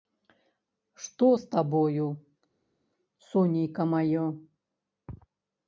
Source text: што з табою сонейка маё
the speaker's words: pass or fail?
pass